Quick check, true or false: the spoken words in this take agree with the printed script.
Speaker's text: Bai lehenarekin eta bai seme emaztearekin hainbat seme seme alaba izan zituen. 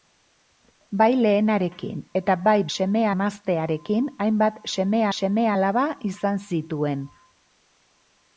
true